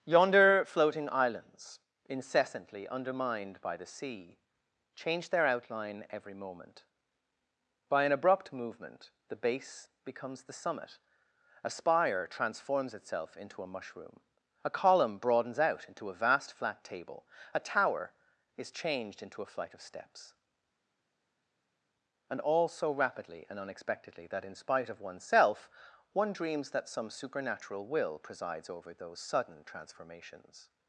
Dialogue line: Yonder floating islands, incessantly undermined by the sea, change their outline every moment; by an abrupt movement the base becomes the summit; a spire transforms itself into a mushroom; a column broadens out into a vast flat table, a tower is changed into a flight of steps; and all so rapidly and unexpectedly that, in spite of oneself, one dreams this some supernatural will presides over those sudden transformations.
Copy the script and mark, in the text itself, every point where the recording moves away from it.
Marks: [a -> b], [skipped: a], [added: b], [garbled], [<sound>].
Yonder floating islands, incessantly undermined by the sea, change their outline every moment; by an abrupt movement the base becomes the summit; a spire transforms itself into a mushroom; a column broadens out into a vast flat table, a tower is changed into a flight of steps; and all so rapidly and unexpectedly that, in spite of oneself, one dreams [this -> that] some supernatural will presides over those sudden transformations.